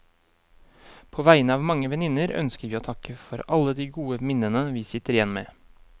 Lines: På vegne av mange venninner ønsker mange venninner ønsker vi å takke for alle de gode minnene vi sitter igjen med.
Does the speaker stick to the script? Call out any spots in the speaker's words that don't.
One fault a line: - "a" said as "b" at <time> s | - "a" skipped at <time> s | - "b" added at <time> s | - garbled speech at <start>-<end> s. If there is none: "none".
- "mange venninner ønsker" skipped at 2.7 s